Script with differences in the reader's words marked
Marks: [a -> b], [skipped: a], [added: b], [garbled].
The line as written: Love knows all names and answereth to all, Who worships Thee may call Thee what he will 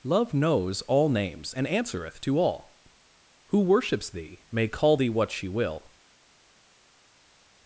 Love knows all names and answereth to all, Who worships Thee may call Thee what [he -> she] will